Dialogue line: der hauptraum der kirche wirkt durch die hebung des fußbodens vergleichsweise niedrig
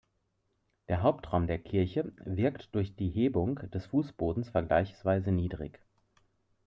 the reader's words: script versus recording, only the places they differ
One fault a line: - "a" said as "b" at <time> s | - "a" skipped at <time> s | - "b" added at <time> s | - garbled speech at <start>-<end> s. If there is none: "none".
none